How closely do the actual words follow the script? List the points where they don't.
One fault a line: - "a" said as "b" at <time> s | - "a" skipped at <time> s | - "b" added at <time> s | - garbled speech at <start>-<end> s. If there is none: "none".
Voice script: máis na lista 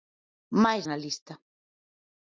none